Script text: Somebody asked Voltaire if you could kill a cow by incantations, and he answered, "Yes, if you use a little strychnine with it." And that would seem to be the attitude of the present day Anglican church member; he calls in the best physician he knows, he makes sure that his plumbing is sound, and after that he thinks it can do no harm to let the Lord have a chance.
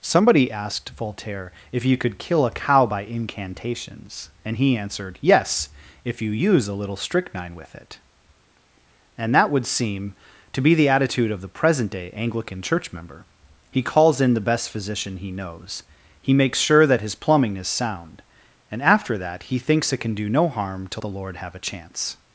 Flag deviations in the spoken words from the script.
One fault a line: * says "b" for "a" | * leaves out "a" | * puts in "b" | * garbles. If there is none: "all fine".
* leaves out "let"